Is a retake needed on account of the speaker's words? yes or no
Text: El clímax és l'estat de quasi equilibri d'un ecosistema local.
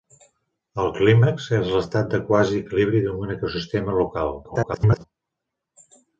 yes